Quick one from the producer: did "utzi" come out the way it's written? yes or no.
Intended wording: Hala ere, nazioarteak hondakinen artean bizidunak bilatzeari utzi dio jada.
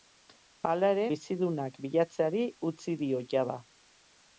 yes